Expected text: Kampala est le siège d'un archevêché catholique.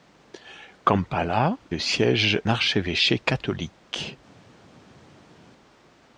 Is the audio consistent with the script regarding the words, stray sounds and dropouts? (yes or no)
no